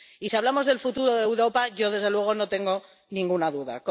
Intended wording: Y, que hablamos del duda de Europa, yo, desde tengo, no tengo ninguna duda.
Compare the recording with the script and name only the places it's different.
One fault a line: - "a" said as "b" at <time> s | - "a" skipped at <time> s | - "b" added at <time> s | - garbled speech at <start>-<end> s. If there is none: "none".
- "que" said as "si" at 0.2 s
- "duda" said as "futuro" at 0.8 s
- "tengo" said as "luego" at 2.1 s